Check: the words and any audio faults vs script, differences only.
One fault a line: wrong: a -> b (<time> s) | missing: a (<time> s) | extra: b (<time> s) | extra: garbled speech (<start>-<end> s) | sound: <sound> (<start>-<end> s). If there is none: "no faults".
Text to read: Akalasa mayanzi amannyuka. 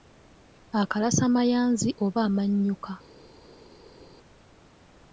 extra: oba (2.0 s)